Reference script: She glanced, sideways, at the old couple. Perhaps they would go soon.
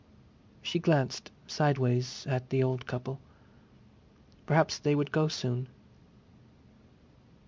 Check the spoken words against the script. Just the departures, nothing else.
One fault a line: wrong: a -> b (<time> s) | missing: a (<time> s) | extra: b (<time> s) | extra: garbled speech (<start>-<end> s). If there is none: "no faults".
no faults